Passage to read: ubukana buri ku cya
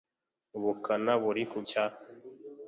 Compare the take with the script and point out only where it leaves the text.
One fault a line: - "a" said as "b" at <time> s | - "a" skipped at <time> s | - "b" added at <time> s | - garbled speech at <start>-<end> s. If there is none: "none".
none